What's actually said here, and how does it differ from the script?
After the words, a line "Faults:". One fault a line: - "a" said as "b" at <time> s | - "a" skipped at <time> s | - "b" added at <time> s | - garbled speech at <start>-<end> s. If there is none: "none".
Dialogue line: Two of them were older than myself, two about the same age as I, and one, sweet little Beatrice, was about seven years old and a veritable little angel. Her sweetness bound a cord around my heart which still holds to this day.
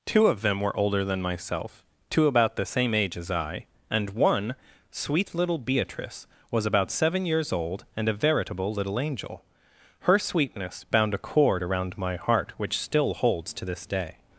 Two of them were older than myself, two about the same age as I, and one, sweet little Beatrice, was about seven years old and a veritable little angel. Her sweetness bound a cord around my heart which still holds to this day.
Faults:
none